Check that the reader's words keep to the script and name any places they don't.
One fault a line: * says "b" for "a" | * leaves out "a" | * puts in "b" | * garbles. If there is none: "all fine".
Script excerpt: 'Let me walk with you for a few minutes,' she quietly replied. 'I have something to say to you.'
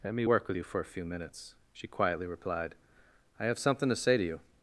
* says "work" for "walk"